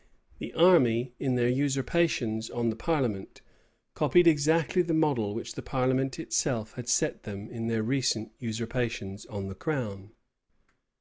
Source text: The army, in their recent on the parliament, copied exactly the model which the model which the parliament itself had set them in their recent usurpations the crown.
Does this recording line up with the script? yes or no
no